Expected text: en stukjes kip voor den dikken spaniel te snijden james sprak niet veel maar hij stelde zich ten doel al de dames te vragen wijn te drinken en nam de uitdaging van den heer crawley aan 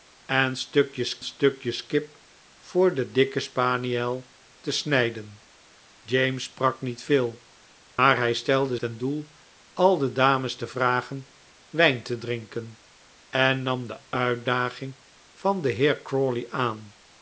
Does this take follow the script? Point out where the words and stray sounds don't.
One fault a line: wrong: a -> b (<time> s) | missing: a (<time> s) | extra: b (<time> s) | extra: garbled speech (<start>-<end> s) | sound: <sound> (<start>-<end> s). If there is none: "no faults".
extra: stukjes (1.2 s)
sound: dropout (7.9-8.0 s)
missing: zich (8.8 s)